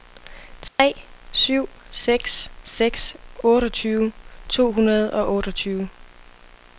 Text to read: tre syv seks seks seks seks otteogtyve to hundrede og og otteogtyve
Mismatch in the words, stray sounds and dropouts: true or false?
true